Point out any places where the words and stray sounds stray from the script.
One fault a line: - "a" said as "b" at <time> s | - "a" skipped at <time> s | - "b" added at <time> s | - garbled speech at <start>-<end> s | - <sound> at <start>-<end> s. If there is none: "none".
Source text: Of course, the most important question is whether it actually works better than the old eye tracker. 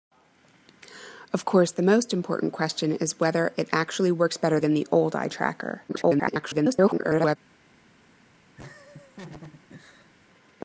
- garbled speech at 5.9-7.4 s
- laugh at 8.6-10.1 s